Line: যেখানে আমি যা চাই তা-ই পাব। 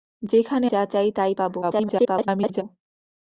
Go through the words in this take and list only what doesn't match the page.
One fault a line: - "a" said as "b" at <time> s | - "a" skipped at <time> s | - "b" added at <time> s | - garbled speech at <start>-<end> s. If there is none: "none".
- "আমি" skipped at 0.7 s
- garbled speech at 1.6-2.6 s